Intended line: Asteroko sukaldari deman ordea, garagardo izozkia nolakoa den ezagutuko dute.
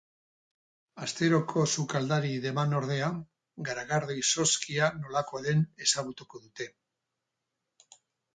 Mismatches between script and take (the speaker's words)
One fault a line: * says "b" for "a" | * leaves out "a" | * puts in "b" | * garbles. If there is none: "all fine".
all fine